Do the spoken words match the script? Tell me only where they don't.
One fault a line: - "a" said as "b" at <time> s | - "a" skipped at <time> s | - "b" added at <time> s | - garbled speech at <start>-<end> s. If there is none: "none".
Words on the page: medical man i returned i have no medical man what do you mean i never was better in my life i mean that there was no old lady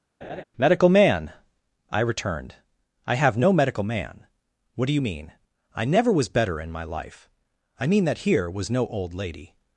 - "there" said as "here" at 8.2 s